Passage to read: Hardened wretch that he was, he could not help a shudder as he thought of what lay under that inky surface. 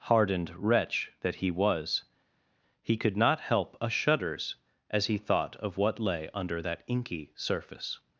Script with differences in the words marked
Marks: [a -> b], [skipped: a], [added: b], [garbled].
Hardened wretch that he was, he could not help a [shudder -> shudders] as he thought of what lay under that inky surface.